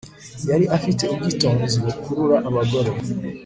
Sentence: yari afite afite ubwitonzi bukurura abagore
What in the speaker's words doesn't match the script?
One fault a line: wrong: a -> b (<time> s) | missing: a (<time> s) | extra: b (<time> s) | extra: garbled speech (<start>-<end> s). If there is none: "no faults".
missing: afite (1.0 s)